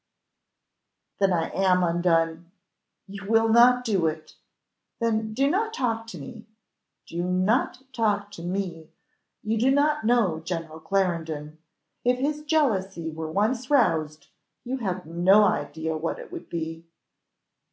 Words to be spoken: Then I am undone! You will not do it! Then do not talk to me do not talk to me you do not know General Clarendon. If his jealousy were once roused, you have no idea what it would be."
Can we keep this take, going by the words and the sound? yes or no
yes